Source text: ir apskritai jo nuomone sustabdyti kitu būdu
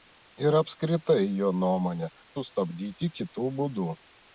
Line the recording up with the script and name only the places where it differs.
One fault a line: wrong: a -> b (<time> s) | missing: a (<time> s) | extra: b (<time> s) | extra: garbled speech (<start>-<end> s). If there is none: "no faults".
no faults